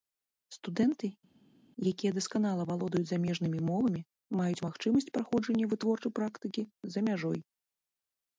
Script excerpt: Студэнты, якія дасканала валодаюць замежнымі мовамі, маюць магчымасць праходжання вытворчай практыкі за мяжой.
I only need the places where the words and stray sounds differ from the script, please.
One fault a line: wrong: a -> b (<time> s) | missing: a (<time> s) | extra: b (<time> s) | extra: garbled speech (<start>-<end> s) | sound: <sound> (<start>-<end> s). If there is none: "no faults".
no faults